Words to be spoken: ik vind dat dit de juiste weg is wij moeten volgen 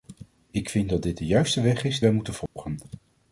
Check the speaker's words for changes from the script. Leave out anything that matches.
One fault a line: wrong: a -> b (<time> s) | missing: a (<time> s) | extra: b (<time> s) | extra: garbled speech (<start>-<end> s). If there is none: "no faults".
no faults